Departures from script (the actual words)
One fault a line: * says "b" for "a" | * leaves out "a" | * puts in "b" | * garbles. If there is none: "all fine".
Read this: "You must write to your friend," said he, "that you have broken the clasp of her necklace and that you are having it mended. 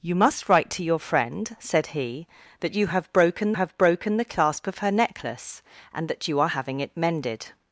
* puts in "have broken"